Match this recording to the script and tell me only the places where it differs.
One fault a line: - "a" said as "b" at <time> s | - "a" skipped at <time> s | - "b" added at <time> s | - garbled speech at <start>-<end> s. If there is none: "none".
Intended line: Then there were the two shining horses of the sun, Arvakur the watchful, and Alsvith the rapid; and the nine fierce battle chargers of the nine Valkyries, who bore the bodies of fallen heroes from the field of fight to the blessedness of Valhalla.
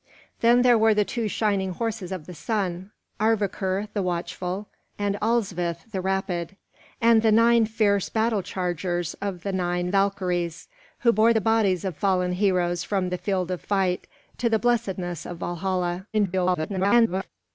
- garbled speech at 16.1-17.3 s